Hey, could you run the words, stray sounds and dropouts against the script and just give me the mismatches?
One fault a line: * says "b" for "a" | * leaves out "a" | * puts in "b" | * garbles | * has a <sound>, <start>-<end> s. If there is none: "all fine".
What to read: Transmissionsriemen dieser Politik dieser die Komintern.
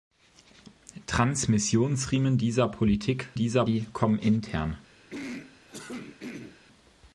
* has a throat clearing, 5.1-6.6 s